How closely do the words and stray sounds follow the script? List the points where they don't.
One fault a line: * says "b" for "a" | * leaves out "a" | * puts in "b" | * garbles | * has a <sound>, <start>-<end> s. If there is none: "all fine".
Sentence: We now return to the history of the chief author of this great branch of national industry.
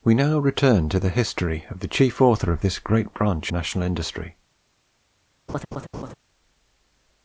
* leaves out "of"
* has a laugh, 5.5-6.1 s